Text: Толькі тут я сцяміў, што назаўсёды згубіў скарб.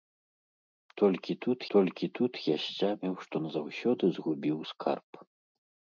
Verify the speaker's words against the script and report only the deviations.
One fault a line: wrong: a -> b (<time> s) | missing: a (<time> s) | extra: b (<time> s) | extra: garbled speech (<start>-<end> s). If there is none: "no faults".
extra: толькі тут (1.7 s)